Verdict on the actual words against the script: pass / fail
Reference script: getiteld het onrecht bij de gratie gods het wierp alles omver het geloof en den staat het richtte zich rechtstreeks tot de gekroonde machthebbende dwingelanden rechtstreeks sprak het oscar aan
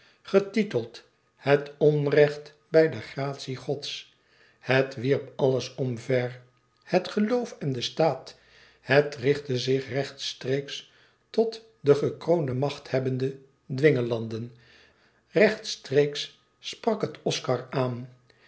pass